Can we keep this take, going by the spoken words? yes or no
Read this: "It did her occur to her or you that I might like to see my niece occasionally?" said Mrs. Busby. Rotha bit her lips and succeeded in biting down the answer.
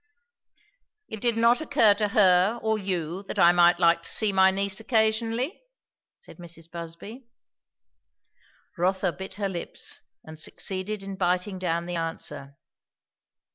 no